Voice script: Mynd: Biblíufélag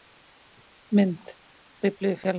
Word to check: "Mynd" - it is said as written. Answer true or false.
true